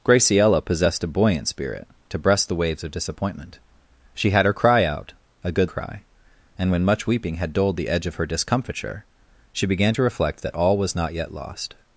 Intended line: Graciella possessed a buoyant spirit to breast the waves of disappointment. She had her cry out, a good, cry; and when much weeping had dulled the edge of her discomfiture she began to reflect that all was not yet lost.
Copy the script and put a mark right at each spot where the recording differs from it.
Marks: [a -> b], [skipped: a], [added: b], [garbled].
Graciella possessed a buoyant spirit to breast the waves of disappointment. She had her cry out, a good, cry; and when much weeping had dulled the edge of her discomfiture she began to reflect that all was not yet lost.